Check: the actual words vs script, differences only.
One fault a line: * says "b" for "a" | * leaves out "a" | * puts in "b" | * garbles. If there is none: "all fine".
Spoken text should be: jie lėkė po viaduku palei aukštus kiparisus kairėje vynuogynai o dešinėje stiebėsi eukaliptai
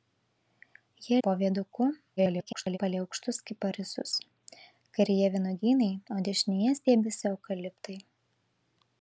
* leaves out "lėkė"
* garbles